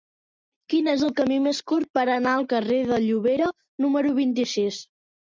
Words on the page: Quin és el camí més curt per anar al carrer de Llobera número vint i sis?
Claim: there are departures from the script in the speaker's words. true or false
false